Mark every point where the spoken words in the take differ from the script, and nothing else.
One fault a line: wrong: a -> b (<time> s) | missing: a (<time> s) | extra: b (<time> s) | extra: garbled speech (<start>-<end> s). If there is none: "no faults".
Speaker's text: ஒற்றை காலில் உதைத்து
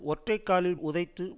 no faults